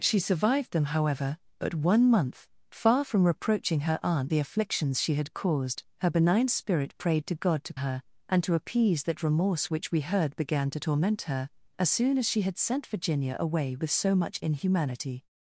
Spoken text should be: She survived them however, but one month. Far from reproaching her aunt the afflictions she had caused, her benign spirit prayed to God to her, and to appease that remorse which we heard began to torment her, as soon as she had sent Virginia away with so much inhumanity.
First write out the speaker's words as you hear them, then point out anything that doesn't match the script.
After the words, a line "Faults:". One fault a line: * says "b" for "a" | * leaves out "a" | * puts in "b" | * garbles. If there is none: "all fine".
She survived them however, but one month. Far from reproaching her aunt the afflictions she had caused, her benign spirit prayed to God to her, and to appease that remorse which we heard began to torment her, as soon as she had sent Virginia away with so much inhumanity.
Faults:
all fine